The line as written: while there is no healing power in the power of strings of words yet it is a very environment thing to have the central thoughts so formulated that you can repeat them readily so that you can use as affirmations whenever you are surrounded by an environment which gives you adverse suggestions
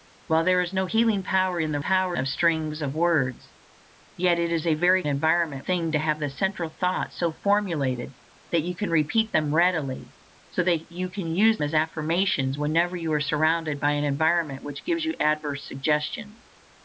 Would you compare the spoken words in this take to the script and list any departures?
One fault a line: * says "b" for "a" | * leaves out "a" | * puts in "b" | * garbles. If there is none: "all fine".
all fine